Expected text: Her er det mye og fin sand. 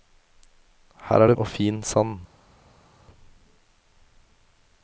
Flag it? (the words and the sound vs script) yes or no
yes